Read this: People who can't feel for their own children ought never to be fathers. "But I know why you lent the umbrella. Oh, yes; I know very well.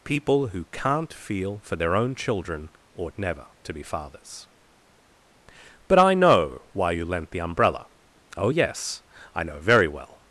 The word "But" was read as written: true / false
true